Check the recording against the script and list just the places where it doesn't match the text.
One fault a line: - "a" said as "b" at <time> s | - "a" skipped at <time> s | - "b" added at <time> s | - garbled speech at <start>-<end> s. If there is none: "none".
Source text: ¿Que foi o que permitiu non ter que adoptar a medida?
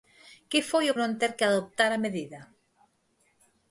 - "que permitiu" skipped at 1.0 s